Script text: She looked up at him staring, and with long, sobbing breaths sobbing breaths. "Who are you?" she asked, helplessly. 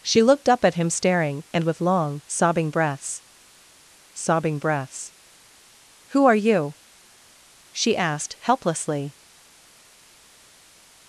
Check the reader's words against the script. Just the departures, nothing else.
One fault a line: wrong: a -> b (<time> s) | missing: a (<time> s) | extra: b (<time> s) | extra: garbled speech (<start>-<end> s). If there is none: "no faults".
no faults